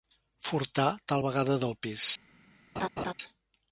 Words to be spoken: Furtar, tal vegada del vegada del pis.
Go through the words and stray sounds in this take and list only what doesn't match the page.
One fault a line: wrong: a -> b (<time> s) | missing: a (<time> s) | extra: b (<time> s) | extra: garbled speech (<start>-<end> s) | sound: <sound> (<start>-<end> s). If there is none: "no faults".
missing: vegada del (1.8 s)
sound: laugh (2.8-3.1 s)